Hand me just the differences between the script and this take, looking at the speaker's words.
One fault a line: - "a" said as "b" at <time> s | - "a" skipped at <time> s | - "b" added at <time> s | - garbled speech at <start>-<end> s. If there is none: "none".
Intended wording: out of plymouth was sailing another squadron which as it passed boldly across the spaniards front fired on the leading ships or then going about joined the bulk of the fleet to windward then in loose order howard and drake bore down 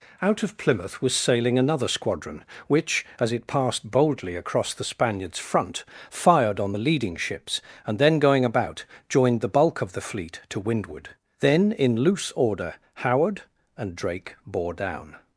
- "or" said as "and" at 7.9 s